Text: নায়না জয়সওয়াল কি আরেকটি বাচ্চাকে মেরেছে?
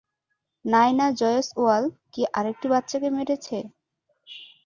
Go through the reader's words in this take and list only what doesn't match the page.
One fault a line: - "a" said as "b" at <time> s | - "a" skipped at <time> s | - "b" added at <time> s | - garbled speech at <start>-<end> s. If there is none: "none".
none